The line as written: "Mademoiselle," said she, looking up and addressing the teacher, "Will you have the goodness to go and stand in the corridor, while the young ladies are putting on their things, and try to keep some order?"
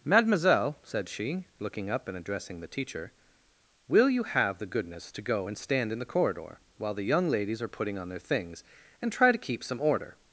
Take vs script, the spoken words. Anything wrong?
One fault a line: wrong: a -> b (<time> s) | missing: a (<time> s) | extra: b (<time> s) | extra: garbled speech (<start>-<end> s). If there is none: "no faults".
no faults